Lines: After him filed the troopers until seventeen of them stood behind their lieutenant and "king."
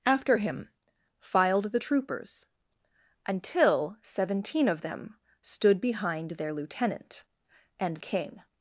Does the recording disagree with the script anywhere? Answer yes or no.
no